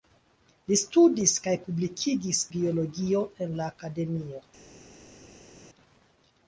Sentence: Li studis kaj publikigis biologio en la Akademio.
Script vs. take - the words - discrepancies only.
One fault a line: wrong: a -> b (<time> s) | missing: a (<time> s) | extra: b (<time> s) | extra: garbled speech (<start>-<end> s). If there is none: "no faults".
no faults